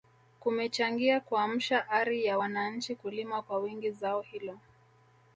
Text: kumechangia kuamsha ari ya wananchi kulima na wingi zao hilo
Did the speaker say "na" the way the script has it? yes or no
no